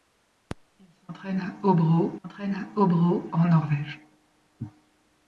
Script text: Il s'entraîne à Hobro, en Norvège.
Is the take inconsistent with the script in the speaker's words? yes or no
yes